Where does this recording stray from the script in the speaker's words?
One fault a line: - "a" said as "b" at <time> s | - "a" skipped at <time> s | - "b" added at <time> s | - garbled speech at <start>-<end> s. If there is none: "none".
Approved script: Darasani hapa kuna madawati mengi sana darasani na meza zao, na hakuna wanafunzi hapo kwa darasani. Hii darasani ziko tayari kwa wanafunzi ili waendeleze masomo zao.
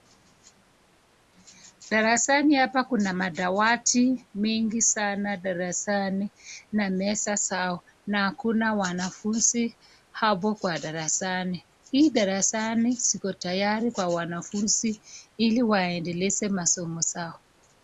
none